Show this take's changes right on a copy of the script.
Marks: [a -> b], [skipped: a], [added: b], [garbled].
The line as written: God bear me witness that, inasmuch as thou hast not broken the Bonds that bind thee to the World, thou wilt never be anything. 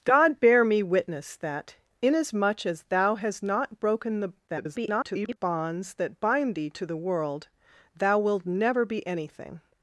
God bear me witness that, inasmuch as thou hast not broken the [garbled] Bonds that bind thee to the World, thou wilt never be anything.